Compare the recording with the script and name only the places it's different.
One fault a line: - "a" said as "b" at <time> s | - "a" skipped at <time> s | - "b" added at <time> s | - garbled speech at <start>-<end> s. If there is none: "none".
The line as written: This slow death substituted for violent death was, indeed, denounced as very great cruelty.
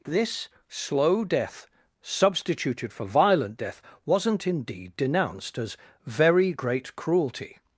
- "was" said as "wasn't" at 4.0 s